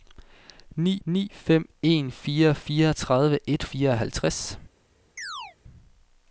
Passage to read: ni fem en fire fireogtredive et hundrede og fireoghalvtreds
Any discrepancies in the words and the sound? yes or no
yes